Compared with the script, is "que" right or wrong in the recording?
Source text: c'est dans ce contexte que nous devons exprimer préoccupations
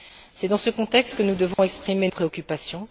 right